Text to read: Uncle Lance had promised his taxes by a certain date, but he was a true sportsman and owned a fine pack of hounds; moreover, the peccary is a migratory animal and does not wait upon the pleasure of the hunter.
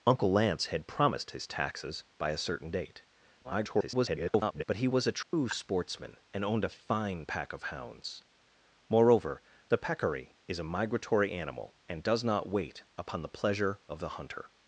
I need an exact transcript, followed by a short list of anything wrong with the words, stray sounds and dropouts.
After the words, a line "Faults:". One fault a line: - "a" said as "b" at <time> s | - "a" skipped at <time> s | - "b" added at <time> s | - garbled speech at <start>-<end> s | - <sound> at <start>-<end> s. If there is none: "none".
Uncle Lance had promised his taxes by a certain date, [garbled] but he was a true sportsman and owned a fine pack of hounds; moreover, the peccary is a migratory animal and does not wait upon the pleasure of the hunter.
Faults:
- garbled speech at 3.4-4.6 s
- dropout at 5.2-5.3 s